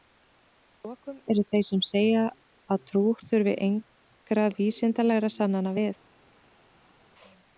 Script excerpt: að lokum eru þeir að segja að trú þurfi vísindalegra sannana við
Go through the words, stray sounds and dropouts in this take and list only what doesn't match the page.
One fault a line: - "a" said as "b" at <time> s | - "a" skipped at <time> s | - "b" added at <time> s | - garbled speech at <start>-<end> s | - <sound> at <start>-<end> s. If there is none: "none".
- "að" said as "sem" at 1.7 s
- "engra" added at 3.7 s